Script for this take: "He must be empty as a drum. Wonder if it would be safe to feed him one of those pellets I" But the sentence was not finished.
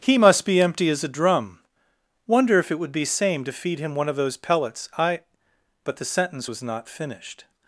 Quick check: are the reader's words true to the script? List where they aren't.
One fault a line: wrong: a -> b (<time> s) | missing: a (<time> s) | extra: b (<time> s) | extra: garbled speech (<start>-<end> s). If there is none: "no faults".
wrong: safe -> same (3.0 s)